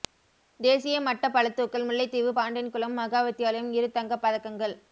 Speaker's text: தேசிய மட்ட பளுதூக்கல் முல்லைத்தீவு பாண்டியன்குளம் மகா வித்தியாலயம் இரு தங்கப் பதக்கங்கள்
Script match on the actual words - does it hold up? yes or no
yes